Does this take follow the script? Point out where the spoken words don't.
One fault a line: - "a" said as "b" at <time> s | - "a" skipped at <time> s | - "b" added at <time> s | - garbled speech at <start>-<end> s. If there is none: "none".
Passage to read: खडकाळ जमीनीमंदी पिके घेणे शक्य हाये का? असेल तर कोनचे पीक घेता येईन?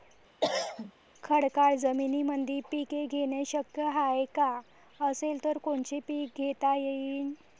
none